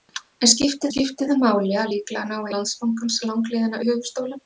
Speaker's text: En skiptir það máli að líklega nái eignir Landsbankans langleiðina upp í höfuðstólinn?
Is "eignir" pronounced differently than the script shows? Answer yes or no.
yes